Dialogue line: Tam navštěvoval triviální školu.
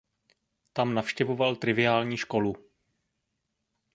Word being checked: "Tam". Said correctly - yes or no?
yes